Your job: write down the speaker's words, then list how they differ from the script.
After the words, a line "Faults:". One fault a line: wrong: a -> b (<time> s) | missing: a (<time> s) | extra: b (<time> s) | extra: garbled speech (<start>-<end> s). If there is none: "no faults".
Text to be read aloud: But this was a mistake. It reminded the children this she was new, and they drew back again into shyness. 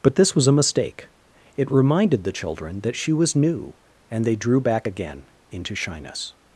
But this was a mistake. It reminded the children that she was new, and they drew back again into shyness.
Faults:
wrong: this -> that (2.8 s)